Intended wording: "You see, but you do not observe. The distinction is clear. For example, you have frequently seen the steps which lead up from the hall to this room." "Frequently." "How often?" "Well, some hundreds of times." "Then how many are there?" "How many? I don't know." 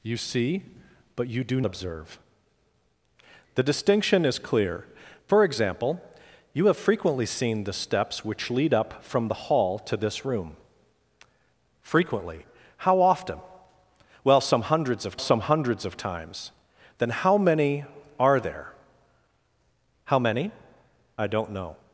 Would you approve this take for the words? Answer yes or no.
no